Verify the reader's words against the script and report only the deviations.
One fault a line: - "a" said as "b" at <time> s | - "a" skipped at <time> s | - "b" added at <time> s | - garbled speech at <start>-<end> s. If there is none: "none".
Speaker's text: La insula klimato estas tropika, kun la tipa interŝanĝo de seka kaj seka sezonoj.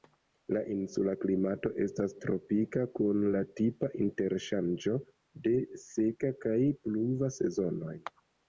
- "seka" said as "pluva" at 6.9 s